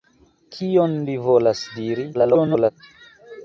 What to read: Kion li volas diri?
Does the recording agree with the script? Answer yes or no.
no